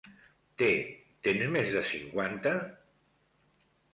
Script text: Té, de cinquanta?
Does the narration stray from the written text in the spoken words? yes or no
yes